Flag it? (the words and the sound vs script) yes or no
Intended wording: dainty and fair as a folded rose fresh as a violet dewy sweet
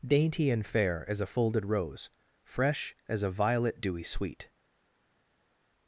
no